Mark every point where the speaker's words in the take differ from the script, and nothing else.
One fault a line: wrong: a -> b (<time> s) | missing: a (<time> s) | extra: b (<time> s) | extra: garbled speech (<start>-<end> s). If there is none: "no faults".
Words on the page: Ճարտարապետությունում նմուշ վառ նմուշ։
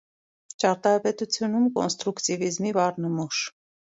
wrong: նմուշ -> կոնստրուկտիվիզմի (1.8 s)